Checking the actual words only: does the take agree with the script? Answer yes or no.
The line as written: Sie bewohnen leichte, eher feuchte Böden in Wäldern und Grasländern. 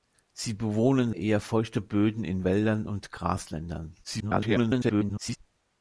no